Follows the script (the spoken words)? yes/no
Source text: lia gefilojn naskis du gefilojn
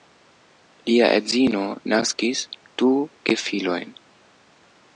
no